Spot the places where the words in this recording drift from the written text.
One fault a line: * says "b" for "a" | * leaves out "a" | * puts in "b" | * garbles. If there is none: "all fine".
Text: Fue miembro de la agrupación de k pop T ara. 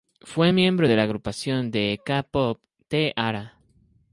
all fine